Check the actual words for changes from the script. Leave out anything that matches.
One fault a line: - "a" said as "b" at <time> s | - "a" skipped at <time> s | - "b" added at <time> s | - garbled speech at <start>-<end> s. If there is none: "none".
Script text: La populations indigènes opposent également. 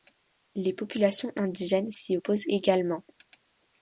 - "La" said as "Les" at 0.6 s
- "s'y" added at 1.9 s